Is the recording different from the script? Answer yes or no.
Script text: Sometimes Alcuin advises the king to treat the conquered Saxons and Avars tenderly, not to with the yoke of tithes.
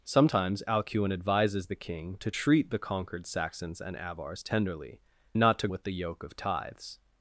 no